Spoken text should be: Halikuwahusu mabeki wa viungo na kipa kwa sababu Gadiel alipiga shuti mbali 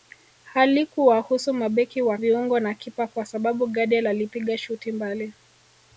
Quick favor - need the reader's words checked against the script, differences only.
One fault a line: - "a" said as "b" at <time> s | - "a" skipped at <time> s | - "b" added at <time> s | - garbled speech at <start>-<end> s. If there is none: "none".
none